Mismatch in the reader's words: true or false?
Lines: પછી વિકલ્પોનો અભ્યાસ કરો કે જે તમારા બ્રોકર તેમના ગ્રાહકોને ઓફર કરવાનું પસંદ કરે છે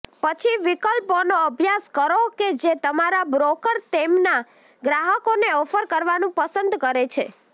false